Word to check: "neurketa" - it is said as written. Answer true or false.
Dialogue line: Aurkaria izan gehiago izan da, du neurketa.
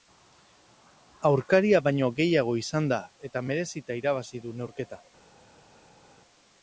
true